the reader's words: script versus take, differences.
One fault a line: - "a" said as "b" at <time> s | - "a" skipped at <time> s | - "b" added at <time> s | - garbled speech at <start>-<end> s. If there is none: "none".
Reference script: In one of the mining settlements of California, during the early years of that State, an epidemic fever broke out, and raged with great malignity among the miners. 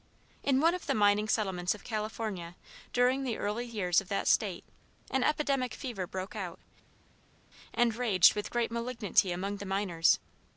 none